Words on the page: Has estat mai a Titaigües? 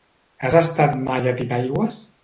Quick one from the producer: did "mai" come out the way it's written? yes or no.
yes